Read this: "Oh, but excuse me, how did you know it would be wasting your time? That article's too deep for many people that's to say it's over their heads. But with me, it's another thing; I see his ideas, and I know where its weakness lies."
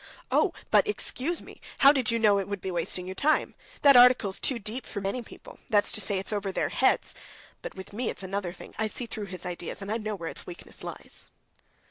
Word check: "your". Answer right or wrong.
right